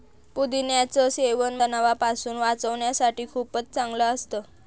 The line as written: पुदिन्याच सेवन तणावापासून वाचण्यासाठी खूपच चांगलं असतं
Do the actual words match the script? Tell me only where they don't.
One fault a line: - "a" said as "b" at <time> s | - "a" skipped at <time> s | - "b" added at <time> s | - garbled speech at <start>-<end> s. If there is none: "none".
none